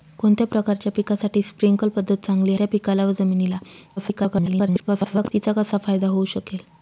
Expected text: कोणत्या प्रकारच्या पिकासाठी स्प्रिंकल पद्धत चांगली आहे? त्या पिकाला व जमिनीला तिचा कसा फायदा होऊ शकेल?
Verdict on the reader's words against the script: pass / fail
fail